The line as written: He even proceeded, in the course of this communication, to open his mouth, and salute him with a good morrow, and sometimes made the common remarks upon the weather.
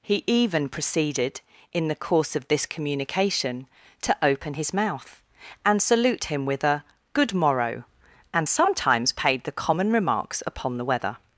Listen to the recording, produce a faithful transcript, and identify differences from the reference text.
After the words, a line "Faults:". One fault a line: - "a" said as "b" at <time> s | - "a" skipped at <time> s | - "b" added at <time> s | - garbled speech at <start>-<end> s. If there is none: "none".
He even proceeded, in the course of this communication, to open his mouth, and salute him with a good morrow, and sometimes paid the common remarks upon the weather.
Faults:
- "made" said as "paid" at 9.1 s